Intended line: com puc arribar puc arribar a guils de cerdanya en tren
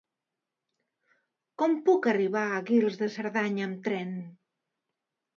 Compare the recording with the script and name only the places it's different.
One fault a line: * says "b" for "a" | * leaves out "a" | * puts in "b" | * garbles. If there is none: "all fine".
* leaves out "puc arribar"
* says "amb" for "en"